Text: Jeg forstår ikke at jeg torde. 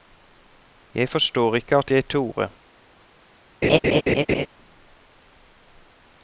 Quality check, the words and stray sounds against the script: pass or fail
fail